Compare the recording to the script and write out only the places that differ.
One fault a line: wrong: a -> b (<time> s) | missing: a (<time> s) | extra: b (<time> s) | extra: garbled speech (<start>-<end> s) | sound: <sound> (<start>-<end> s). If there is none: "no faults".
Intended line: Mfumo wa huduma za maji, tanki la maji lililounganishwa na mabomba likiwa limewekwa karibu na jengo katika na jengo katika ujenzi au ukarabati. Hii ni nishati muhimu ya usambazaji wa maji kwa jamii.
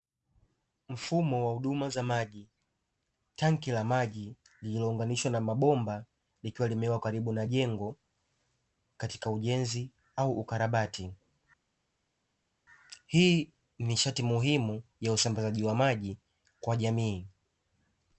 missing: na jengo katika (9.3 s)